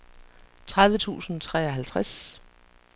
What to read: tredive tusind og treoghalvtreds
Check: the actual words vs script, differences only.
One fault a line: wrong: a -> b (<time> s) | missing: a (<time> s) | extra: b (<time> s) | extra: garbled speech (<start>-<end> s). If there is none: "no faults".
no faults